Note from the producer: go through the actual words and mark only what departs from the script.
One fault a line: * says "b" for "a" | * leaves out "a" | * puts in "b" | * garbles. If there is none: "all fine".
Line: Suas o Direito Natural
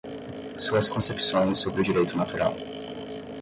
* puts in "concepções sobre"